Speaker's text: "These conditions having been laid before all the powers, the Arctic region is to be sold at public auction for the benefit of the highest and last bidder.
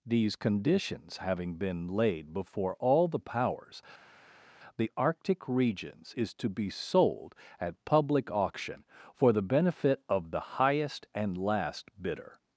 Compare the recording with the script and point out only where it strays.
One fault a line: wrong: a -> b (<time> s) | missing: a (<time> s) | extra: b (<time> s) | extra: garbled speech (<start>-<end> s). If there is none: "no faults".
wrong: region -> regions (5.5 s)